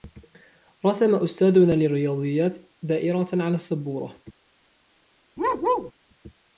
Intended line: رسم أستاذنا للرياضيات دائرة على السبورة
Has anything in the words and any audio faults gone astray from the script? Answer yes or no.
yes